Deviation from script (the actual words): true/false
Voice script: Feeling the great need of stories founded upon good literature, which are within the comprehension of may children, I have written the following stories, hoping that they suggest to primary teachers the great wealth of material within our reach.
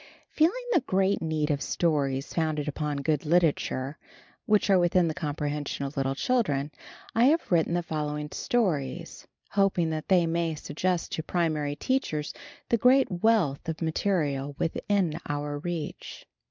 true